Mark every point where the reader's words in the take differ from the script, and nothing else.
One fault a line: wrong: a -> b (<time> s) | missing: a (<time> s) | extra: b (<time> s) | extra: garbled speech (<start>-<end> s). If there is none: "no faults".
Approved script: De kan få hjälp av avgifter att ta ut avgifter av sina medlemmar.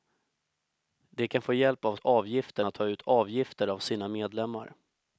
no faults